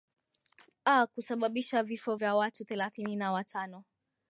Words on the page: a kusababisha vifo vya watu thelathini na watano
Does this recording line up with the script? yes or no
yes